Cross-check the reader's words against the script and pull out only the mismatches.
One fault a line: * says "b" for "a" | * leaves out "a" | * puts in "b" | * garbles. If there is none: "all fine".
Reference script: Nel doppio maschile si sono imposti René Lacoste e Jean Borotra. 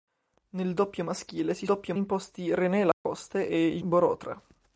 * says "doppio" for "sono"
* leaves out "Jean"